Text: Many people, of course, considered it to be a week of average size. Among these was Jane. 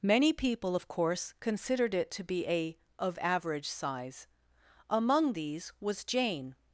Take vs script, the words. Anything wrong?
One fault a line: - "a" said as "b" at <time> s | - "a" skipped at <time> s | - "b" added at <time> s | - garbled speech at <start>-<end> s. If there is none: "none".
- "week" skipped at 2.8 s